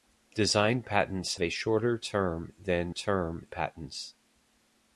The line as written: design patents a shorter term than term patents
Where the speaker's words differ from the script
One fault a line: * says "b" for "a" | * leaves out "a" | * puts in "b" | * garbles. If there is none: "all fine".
all fine